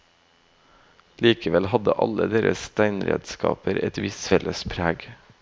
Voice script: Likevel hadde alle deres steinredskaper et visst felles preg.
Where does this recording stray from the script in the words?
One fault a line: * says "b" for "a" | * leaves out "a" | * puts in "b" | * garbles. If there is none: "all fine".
all fine